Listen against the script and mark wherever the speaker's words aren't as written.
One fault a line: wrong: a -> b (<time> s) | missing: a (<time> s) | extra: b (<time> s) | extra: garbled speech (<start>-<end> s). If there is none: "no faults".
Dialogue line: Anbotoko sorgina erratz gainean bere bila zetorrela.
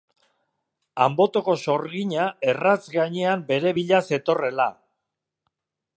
no faults